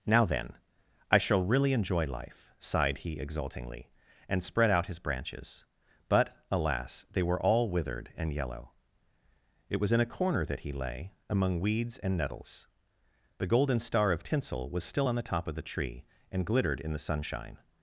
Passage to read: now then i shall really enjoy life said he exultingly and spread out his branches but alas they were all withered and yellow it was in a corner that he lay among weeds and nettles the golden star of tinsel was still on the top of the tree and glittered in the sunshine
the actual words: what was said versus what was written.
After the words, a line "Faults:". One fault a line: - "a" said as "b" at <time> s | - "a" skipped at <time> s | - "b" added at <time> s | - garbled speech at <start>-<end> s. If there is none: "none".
now then i shall really enjoy life sighed he exultingly and spread out his branches but alas they were all withered and yellow it was in a corner that he lay among weeds and nettles the golden star of tinsel was still on the top of the tree and glittered in the sunshine
Faults:
- "said" said as "sighed" at 2.6 s